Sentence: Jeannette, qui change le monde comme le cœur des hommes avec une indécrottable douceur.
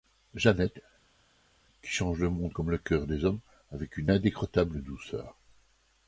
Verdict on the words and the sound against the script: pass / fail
pass